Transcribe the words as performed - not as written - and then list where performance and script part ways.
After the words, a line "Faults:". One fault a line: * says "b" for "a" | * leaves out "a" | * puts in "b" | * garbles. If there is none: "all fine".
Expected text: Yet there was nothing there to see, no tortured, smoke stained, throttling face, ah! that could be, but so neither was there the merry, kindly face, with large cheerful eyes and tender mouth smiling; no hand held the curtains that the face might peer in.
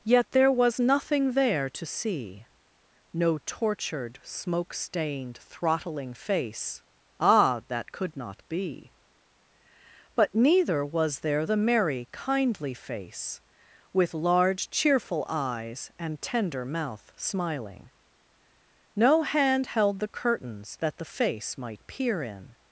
Yet there was nothing there to see, no tortured, smoke stained, throttling face, ah! that could not be, but neither was there the merry, kindly face, with large cheerful eyes and tender mouth smiling; no hand held the curtains that the face might peer in.
Faults:
* puts in "not"
* leaves out "so"